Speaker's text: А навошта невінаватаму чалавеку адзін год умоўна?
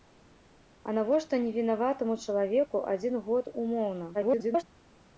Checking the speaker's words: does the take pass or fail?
fail